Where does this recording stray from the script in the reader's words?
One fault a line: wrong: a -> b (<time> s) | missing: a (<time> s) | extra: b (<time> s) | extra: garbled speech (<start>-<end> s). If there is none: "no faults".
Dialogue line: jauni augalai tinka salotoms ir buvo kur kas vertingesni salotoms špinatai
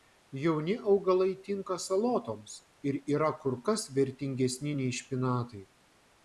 wrong: buvo -> yra (3.2 s)
wrong: salotoms -> nei (4.8 s)